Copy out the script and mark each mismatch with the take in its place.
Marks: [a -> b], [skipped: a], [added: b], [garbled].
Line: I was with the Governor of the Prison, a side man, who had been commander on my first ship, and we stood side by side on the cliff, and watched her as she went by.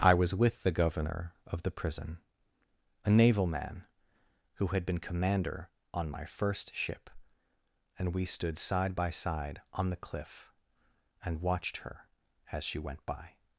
I was with the Governor of the Prison, a [side -> naval] man, who had been commander on my first ship, and we stood side by side on the cliff, and watched her as she went by.